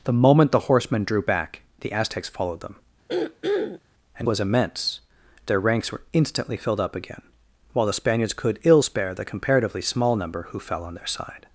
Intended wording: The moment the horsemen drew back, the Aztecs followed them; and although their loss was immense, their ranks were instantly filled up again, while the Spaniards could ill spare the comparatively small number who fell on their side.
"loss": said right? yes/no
no